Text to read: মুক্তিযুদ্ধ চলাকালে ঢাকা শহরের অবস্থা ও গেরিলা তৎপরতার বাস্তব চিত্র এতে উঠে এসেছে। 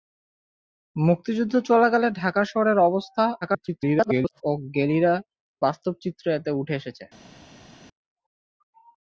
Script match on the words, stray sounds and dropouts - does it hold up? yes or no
no